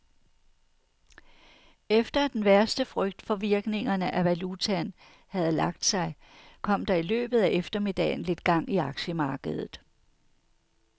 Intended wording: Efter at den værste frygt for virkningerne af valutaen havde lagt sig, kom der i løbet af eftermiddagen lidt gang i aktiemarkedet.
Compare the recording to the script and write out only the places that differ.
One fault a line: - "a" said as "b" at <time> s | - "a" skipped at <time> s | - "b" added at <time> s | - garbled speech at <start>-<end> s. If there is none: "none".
none